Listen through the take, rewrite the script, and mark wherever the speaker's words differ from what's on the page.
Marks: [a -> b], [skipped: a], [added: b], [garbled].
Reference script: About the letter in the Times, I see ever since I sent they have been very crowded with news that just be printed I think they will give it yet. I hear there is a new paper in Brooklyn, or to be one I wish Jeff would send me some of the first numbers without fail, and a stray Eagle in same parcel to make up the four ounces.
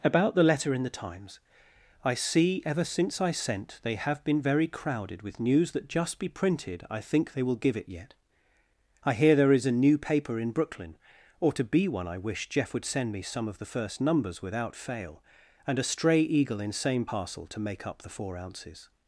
About the letter in the Times, I see ever since I sent they have been very crowded with news that just be printed I think they will give it yet. I hear there is a new paper in Brooklyn, or to be one I wish Jeff would send me some of the first numbers without fail, and a stray Eagle in same parcel to make up the four ounces.